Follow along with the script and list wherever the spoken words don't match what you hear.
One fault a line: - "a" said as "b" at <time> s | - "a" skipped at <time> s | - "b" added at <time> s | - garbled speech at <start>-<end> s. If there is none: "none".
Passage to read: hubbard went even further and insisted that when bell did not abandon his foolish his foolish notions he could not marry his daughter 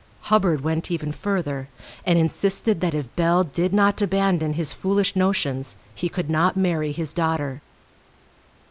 - "when" said as "if" at 3.0 s
- "his foolish" skipped at 5.1 s